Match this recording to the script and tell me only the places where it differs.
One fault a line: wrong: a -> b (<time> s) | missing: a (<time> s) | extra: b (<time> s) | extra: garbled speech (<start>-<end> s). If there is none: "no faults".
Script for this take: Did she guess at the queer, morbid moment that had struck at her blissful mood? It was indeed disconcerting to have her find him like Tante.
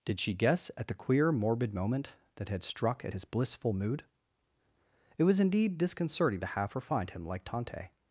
wrong: her -> his (3.1 s)